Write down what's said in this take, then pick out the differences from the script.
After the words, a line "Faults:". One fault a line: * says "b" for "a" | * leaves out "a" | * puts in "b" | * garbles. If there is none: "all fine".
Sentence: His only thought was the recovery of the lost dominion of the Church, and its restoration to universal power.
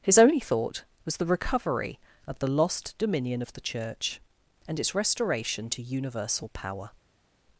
His only thought was the recovery of the lost dominion of the Church, and its restoration to universal power.
Faults:
all fine